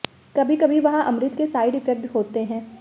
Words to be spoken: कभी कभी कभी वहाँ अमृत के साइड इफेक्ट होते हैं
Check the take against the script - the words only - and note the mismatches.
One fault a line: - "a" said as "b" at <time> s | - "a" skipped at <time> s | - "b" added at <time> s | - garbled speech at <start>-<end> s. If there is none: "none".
- "कभी" skipped at 0.8 s